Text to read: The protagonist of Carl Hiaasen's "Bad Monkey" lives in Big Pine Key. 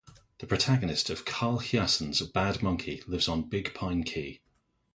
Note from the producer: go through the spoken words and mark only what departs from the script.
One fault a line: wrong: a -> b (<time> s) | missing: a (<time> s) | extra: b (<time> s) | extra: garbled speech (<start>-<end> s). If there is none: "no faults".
wrong: in -> on (3.3 s)